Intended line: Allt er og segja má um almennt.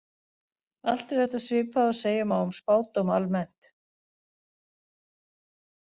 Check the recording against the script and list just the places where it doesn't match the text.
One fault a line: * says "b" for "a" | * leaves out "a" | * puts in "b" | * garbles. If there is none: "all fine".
* puts in "þetta svipað"
* puts in "spádóma"